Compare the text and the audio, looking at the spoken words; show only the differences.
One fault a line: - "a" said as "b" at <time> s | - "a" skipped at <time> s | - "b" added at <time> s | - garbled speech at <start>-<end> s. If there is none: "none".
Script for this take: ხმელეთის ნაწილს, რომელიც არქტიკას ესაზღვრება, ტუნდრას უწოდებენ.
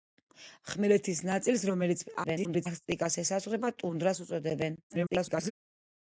- garbled speech at 2.2-2.7 s
- garbled speech at 4.9-5.5 s